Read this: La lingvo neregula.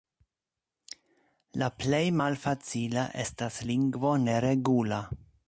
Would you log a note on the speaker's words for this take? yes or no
yes